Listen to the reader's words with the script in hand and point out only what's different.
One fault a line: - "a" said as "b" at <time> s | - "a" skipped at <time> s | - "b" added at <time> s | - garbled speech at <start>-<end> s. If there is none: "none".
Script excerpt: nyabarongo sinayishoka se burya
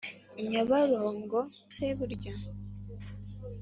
- "sinayishoka" skipped at 1.4 s